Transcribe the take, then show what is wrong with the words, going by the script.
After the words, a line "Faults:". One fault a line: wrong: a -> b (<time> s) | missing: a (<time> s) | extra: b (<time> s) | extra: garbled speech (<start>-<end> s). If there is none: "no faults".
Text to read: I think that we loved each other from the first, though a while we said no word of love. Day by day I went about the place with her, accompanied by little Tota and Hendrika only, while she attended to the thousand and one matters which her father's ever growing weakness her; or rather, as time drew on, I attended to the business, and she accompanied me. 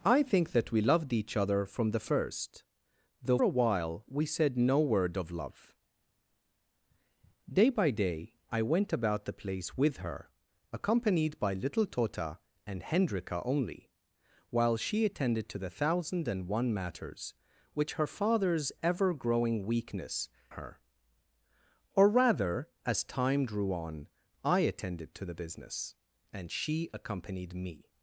I think that we loved each other from the first, though a while we said no word of love. Day by day I went about the place with her, accompanied by little Tota and Hendrika only, while she attended to the thousand and one matters which her father's ever growing weakness her; or rather, as time drew on, I attended to the business, and she accompanied me.
Faults:
no faults